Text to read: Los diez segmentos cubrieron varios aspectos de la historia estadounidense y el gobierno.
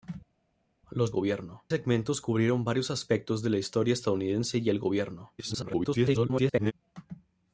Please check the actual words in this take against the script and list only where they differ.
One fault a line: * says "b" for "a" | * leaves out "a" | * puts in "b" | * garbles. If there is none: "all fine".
* says "gobierno" for "diez"
* garbles